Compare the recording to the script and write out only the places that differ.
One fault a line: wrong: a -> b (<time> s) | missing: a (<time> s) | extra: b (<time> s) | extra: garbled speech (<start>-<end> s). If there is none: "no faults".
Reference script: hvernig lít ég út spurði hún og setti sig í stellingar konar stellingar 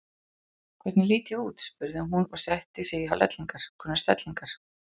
no faults